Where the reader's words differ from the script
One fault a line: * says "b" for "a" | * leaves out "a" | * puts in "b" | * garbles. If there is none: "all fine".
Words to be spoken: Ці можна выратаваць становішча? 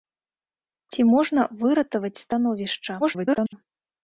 * garbles